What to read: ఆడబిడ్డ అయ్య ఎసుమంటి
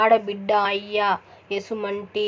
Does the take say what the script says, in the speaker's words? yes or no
yes